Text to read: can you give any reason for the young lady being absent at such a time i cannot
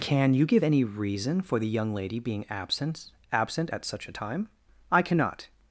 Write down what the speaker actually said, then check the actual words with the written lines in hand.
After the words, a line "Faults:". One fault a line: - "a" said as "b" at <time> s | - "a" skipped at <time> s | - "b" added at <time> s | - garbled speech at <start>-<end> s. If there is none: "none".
can you give any reason for the young lady being absent absent at such a time i cannot
Faults:
- "absent" added at 3.3 s